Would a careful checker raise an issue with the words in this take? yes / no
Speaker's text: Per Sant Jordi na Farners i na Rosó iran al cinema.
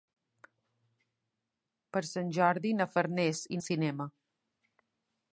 yes